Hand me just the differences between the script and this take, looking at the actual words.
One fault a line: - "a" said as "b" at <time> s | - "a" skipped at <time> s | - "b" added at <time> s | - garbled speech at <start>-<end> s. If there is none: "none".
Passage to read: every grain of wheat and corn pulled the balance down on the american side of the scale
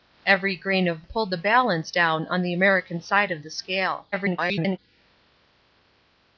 - "wheat and corn" skipped at 1.1 s
- garbled speech at 4.1-4.8 s